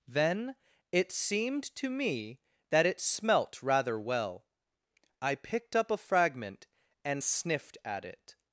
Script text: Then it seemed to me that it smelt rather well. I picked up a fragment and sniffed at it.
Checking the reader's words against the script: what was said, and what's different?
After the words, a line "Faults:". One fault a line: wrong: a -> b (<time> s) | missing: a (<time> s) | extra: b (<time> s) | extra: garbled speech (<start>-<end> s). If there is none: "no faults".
Then it seemed to me that it smelt rather well. I picked up a fragment and sniffed at it.
Faults:
no faults